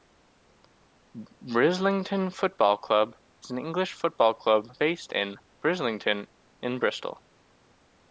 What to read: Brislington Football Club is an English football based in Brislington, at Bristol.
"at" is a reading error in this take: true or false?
true